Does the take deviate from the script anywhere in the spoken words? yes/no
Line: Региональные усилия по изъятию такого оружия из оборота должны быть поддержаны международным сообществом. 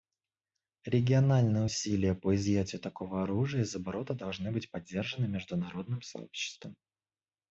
no